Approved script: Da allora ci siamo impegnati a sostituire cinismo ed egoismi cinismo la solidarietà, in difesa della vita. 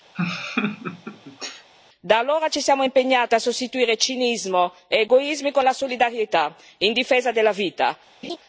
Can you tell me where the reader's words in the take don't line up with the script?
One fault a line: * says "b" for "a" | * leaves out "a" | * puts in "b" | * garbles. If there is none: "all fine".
* says "con" for "cinismo"